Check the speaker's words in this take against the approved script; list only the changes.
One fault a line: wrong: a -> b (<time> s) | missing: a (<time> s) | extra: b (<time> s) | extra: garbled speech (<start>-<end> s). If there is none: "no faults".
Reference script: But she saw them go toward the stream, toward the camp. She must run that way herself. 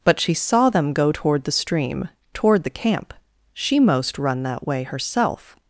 wrong: must -> most (3.8 s)